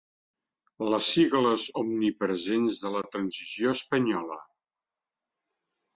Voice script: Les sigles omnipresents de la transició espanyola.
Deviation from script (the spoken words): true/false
false